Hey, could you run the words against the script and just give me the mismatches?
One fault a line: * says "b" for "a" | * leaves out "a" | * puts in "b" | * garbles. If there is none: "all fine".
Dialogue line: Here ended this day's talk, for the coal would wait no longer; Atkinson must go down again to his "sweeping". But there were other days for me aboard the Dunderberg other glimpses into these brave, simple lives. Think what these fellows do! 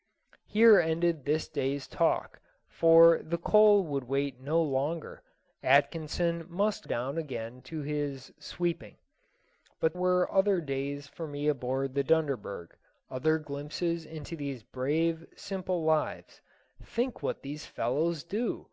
* leaves out "go"
* leaves out "there"